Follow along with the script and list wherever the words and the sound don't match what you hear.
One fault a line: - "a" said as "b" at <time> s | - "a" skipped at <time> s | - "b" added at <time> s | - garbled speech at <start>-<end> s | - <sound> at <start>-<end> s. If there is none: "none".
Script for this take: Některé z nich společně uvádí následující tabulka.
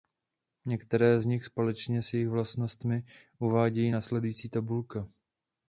- "s jejich vlastnostmi" added at 2.0 s